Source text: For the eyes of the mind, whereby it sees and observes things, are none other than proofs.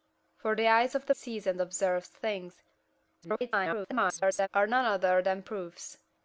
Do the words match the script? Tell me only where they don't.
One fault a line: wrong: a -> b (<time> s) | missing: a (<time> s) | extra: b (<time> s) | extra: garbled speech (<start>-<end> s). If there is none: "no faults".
missing: mind whereby it (1.1 s)
extra: garbled speech (3.2-4.5 s)